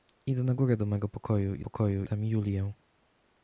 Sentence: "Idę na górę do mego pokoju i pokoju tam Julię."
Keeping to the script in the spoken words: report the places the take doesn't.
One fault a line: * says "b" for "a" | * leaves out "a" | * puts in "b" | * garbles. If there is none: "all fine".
all fine